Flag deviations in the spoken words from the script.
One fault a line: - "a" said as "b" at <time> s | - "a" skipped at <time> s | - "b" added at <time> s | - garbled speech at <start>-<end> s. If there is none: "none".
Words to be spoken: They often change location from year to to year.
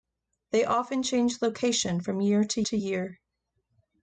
none